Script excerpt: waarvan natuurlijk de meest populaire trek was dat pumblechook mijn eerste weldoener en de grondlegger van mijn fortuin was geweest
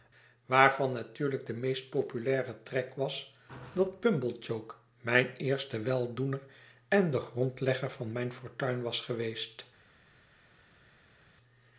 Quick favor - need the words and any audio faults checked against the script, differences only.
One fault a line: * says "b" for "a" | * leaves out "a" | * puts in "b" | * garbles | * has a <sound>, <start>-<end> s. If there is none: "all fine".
all fine